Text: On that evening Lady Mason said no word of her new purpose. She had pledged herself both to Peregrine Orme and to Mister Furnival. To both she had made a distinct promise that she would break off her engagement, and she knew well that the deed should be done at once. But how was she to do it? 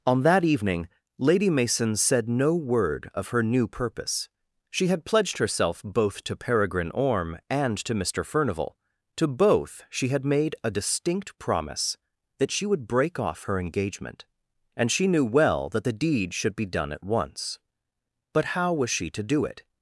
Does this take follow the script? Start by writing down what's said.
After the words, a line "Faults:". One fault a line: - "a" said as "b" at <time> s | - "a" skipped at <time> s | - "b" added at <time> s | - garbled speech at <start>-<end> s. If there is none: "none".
On that evening Lady Mason said no word of her new purpose. She had pledged herself both to Peregrine Orme and to Mister Furnival. To both she had made a distinct promise that she would break off her engagement, and she knew well that the deed should be done at once. But how was she to do it?
Faults:
none